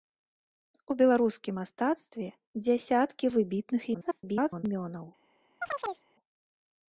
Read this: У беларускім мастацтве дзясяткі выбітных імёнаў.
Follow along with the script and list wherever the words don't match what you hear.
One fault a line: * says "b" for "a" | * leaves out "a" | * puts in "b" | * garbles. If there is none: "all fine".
* garbles